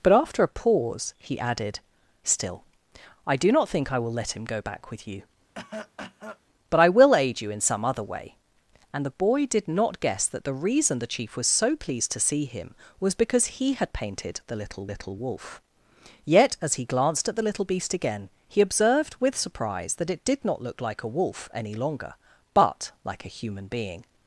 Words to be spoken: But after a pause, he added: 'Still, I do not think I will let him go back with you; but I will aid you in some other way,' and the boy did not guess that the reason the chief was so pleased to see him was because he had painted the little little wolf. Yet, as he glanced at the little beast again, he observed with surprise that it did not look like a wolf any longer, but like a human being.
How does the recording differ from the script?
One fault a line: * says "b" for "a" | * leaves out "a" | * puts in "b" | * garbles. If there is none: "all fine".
all fine